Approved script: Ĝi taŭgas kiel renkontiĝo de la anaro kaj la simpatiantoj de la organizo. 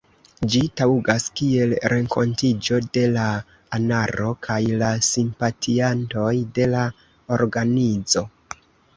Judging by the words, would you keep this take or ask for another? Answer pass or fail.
pass